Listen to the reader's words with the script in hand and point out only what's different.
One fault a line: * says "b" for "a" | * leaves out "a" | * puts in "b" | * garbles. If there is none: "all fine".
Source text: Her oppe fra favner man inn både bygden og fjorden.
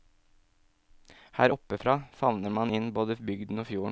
all fine